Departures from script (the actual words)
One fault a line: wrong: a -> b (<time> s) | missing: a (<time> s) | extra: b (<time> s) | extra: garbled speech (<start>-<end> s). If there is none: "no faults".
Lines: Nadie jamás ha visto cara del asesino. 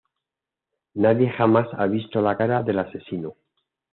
extra: la (2.2 s)